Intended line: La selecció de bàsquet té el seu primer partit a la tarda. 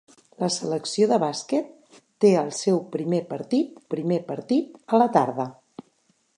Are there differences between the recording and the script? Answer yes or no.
yes